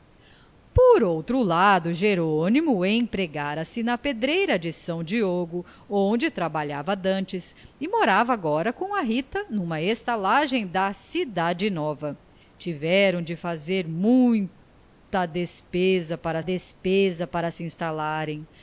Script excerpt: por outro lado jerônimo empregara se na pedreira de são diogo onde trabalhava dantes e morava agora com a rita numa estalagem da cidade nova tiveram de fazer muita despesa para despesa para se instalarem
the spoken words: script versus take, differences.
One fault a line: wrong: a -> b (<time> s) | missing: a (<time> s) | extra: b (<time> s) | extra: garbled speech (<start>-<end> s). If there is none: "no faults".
no faults